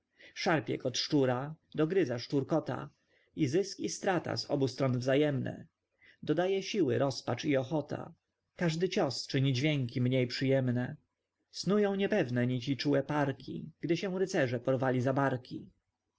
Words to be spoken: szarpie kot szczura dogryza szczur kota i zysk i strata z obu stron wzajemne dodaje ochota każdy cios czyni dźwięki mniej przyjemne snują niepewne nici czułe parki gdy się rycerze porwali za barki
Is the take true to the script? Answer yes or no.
no